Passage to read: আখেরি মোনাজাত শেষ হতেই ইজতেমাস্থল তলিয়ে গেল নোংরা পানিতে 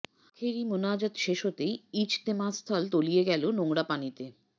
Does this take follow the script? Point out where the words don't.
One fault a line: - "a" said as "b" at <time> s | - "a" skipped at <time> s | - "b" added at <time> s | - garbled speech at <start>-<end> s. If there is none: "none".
none